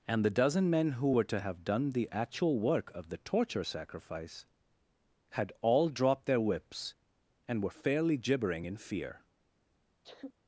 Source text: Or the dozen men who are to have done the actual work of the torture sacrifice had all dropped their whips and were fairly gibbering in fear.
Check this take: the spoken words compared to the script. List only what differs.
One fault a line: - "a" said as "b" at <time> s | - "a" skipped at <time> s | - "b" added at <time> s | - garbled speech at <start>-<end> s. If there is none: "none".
- "Or" said as "And" at 0.1 s
- "are" said as "were" at 1.1 s